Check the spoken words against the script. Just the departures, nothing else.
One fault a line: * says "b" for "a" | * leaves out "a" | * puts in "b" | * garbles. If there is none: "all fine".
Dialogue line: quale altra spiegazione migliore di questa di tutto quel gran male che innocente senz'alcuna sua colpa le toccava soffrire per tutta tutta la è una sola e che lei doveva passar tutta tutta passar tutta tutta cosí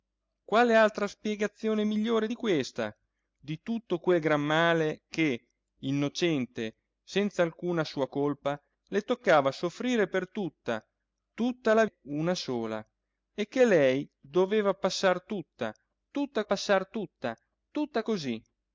all fine